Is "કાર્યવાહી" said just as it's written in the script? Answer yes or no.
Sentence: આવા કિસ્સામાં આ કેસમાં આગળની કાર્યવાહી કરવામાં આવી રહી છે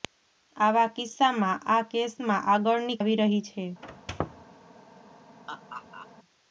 no